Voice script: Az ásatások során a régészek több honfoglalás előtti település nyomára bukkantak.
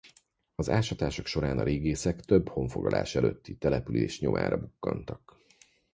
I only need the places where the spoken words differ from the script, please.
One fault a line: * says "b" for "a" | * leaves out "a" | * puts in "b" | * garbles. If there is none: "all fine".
all fine